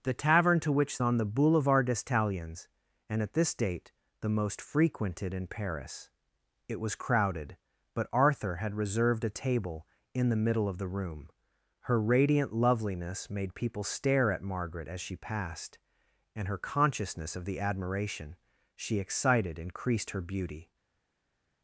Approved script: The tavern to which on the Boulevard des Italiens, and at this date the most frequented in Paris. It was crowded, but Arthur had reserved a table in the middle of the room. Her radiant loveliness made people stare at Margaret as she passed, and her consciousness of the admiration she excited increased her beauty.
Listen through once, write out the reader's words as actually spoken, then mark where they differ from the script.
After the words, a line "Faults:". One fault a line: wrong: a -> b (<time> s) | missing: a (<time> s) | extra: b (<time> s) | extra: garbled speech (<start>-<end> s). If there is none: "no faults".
The tavern to which on the Boulevard des Italiens, and at this date the most frequented in Paris. It was crowded, but Arthur had reserved a table in the middle of the room. Her radiant loveliness made people stare at Margaret as she passed, and her consciousness of the admiration she excited increased her beauty.
Faults:
no faults